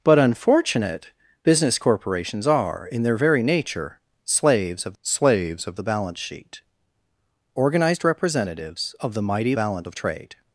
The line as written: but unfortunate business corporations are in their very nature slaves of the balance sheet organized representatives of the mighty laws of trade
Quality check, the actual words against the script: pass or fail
fail